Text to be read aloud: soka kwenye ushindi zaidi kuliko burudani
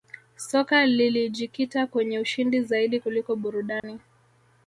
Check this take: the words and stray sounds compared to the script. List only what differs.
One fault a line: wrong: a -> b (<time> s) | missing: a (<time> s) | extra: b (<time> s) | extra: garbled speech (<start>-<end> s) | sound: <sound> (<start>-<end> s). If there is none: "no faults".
extra: lilijikita (0.8 s)
sound: dropout (3.8-3.8 s)